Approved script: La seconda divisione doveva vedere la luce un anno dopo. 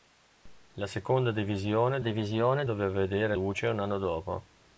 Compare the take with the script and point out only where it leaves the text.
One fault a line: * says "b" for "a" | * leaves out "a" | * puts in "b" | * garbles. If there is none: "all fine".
* puts in "divisione"
* leaves out "la"